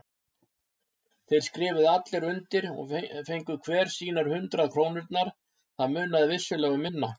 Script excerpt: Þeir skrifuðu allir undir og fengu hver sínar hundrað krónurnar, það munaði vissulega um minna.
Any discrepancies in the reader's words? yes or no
no